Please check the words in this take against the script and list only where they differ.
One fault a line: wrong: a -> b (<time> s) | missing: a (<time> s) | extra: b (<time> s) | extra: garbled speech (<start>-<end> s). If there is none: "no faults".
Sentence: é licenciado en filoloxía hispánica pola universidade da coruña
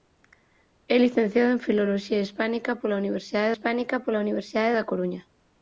extra: hispánica pola universidade (3.5 s)